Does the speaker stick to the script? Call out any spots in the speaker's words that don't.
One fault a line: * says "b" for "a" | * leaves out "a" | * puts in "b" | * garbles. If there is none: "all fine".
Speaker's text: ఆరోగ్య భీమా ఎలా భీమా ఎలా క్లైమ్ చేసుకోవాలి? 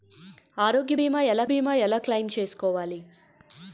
all fine